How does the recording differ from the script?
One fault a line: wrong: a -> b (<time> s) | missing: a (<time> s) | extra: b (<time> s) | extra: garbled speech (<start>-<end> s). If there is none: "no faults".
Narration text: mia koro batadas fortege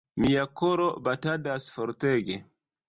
no faults